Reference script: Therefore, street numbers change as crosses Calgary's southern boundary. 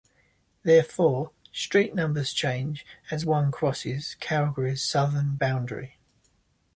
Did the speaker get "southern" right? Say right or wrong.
right